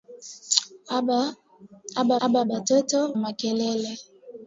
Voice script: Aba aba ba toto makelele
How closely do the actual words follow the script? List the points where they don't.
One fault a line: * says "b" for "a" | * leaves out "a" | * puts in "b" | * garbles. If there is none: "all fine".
all fine